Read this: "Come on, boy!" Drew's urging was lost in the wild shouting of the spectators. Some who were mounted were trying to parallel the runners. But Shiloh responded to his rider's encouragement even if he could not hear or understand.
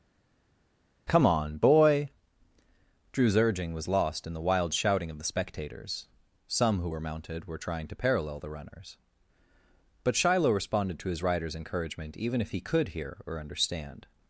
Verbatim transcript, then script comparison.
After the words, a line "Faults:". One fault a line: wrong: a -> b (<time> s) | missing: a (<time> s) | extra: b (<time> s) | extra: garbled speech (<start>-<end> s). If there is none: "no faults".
"Come on, boy!" Drew's urging was lost in the wild shouting of the spectators. Some who were mounted were trying to parallel the runners. But Shiloh responded to his rider's encouragement even if he could hear or understand.
Faults:
missing: not (12.9 s)